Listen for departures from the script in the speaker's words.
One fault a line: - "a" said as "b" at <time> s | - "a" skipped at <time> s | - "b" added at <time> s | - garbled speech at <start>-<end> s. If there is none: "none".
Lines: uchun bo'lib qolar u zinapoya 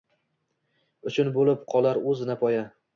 none